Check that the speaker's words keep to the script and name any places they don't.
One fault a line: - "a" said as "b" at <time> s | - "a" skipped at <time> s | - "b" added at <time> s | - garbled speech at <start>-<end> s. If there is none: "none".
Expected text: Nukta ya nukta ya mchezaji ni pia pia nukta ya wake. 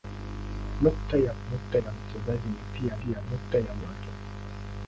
none